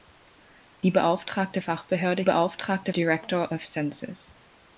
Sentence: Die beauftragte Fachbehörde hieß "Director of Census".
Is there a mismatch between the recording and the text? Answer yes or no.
yes